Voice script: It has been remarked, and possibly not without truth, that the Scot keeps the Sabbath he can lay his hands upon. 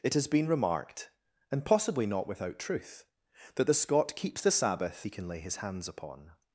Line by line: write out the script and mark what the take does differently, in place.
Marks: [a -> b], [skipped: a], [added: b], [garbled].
It has been remarked, and possibly not without truth, that the Scot keeps the Sabbath he can lay his hands upon.